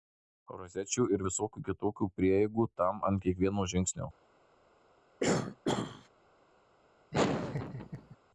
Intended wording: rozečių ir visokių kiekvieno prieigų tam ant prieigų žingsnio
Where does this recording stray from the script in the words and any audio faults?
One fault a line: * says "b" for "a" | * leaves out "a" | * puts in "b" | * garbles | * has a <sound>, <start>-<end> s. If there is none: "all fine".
* says "kitokių" for "kiekvieno"
* says "kiekvieno" for "prieigų"
* has a throat clearing, 5.2-6.1 s
* has a laugh, 7.1-8.2 s